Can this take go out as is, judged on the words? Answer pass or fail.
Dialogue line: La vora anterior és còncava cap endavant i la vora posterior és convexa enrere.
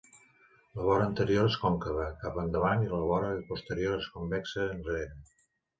pass